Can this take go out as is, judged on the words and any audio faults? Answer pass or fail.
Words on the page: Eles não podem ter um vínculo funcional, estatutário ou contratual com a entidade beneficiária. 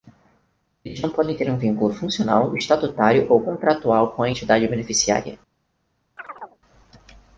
fail